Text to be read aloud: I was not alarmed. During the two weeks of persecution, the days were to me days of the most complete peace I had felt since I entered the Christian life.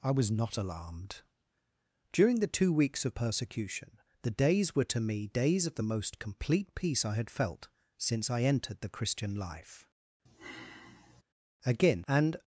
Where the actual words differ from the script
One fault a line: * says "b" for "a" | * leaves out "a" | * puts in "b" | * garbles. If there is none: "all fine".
* puts in "Again and"